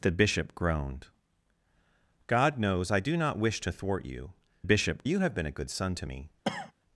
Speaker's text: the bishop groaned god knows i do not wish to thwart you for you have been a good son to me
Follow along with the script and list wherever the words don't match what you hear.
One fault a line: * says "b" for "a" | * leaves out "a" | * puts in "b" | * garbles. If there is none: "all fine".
* says "bishop" for "for"